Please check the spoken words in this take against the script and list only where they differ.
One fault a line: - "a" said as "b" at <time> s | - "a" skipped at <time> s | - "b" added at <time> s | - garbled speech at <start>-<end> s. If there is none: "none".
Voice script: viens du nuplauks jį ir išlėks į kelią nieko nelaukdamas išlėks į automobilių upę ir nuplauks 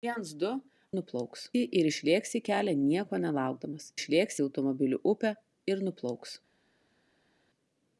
none